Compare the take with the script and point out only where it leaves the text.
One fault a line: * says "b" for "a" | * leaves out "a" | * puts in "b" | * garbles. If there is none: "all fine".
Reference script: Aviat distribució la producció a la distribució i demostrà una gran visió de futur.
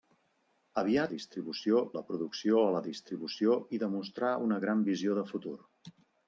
all fine